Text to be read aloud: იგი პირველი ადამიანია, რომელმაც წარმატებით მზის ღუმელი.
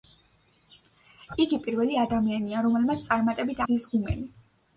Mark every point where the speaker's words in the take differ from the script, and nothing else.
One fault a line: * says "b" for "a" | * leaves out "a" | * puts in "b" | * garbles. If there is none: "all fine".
all fine